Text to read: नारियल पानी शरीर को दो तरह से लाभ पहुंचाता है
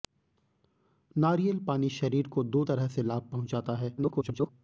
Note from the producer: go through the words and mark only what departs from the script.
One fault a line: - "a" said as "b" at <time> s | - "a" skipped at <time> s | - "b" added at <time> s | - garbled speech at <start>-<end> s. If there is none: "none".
- garbled speech at 4.0-4.5 s